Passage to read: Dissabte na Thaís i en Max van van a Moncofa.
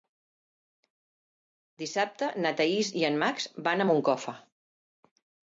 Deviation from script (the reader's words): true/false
true